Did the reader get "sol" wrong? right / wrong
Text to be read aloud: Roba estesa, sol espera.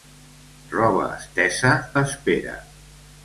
wrong